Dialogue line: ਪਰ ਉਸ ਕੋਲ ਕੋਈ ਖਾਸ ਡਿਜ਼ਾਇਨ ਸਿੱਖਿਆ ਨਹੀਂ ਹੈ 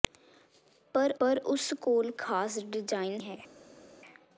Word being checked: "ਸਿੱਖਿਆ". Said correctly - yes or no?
no